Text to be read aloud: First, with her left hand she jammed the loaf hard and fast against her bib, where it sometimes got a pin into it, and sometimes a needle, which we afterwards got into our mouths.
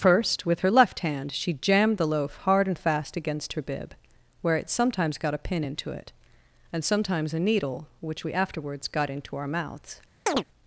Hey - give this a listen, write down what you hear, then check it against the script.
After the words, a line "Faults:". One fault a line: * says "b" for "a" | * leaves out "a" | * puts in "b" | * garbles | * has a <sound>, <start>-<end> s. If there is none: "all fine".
First, with her left hand she jammed the loaf hard and fast against her bib, where it sometimes got a pin into it, and sometimes a needle, which we afterwards got into our mouths.
Faults:
* has a chirp, 10.3-10.4 s